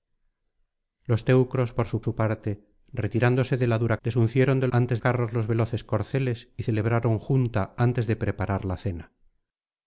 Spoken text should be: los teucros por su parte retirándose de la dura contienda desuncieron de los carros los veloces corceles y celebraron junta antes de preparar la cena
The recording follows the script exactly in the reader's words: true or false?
false